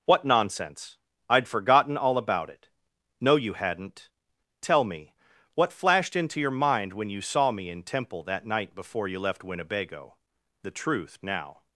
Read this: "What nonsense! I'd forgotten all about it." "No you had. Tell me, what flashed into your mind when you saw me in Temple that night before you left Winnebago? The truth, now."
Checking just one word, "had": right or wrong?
wrong